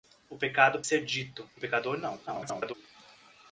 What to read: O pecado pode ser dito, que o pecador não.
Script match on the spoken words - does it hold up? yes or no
no